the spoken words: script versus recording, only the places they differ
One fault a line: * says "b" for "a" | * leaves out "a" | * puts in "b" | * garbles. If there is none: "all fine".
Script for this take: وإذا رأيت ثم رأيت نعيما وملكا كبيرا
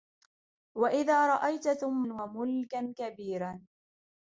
* leaves out "رأيت نعيما"